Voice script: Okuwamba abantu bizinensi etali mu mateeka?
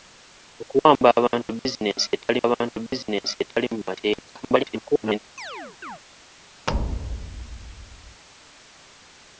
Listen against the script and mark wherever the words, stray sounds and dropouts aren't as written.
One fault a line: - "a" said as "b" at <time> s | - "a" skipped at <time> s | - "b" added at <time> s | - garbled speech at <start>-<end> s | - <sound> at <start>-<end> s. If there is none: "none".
- "abantu bizinensi etali" added at 2.5 s
- garbled speech at 4.4-5.2 s
- chirp at 5.4-6.0 s
- thud at 6.7-8.2 s